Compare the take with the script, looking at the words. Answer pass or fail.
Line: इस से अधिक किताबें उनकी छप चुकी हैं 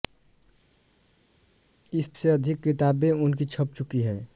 pass